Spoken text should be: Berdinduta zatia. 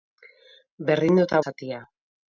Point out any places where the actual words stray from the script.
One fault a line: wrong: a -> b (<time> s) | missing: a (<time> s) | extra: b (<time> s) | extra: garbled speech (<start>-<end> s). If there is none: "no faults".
no faults